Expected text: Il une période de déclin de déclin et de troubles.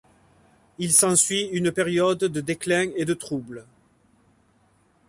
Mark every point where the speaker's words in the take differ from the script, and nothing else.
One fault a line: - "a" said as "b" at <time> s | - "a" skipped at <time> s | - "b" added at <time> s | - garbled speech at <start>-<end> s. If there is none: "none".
- "s'ensuit" added at 0.9 s
- "de déclin" skipped at 2.9 s